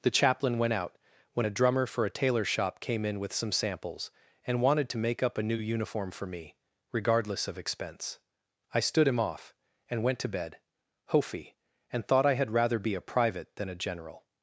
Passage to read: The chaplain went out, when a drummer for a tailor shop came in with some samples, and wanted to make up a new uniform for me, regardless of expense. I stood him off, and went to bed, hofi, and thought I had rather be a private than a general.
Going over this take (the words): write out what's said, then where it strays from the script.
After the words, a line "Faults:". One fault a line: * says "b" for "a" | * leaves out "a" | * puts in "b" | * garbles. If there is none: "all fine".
The chaplain went out, when a drummer for a tailor shop came in with some samples, and wanted to make up a new uniform for me, regardless of expense. I stood him off, and went to bed, hofi, and thought I had rather be a private than a general.
Faults:
all fine